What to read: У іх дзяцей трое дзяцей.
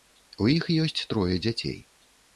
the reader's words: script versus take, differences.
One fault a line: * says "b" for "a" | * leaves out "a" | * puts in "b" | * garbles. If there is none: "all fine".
* says "ёсць" for "дзяцей"